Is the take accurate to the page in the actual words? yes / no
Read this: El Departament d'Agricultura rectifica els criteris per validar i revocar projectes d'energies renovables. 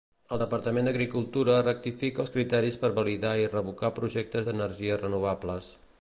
yes